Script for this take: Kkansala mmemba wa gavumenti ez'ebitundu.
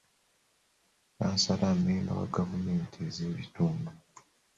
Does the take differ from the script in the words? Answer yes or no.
no